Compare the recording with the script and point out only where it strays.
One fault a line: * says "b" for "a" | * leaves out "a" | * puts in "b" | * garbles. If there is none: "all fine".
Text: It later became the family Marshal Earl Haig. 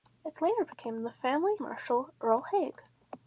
all fine